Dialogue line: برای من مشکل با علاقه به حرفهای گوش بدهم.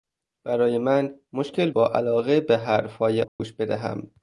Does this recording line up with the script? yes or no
yes